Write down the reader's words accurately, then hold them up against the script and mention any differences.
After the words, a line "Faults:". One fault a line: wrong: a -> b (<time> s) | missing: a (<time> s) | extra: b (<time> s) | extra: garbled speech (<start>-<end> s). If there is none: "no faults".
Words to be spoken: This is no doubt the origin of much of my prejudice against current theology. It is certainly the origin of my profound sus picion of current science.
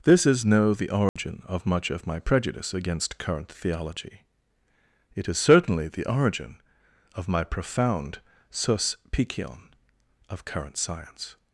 This is no the origin of much of my prejudice against current theology. It is certainly the origin of my profound sus picion of current science.
Faults:
missing: doubt (0.7 s)